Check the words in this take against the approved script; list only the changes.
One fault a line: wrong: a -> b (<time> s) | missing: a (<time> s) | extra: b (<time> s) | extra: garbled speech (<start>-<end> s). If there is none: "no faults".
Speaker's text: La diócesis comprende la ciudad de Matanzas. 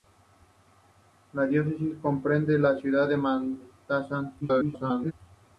extra: garbled speech (4.4-5.1 s)